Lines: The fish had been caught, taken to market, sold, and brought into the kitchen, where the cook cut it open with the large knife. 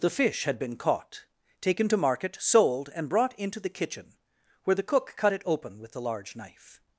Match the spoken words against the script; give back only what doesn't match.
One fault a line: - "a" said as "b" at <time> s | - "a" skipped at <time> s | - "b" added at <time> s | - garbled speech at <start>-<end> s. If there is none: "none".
none